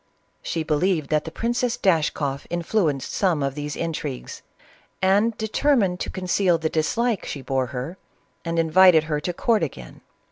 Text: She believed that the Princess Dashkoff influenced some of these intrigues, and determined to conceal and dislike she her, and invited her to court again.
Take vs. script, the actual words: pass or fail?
fail